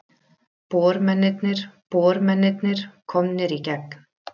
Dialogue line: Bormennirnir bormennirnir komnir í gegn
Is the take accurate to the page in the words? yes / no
yes